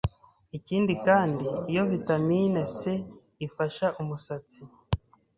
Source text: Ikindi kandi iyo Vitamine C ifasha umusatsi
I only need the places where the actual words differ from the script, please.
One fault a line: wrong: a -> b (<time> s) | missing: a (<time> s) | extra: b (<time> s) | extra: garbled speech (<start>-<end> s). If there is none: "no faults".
no faults